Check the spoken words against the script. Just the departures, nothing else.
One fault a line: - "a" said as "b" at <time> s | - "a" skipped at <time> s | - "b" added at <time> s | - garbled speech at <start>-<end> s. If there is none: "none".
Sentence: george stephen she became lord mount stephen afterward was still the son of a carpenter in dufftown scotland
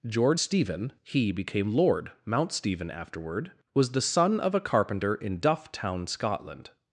- "she" said as "he" at 1.0 s
- "still" skipped at 3.9 s